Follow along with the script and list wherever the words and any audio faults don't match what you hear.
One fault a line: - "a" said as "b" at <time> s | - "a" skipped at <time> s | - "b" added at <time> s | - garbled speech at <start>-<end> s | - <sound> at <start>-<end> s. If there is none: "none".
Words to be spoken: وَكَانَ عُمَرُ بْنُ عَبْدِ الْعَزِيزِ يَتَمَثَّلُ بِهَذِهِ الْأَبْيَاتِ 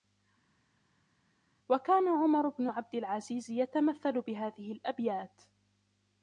none